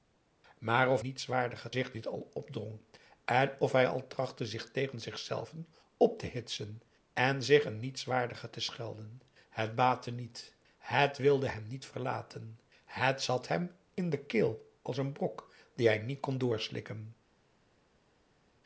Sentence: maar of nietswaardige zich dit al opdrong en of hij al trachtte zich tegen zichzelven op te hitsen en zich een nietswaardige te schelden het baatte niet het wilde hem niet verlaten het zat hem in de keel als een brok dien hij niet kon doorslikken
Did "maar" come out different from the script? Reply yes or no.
no